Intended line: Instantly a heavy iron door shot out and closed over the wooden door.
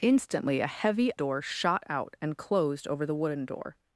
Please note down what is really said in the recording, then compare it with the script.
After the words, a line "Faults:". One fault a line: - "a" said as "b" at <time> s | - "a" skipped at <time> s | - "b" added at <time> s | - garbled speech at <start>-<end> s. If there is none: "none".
Instantly a heavy door shot out and closed over the wooden door.
Faults:
- "iron" skipped at 1.1 s